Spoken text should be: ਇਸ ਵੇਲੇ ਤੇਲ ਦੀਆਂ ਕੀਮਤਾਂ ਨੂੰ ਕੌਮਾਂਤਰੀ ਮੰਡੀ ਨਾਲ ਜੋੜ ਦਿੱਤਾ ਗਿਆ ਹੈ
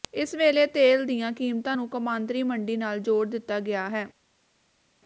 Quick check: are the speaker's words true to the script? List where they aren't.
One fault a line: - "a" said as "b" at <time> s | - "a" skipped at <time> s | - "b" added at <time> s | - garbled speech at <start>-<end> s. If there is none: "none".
none